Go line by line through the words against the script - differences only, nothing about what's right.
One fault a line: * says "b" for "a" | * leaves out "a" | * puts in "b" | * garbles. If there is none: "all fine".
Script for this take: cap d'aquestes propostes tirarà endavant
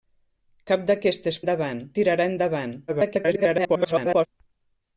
* says "endavant" for "propostes"
* garbles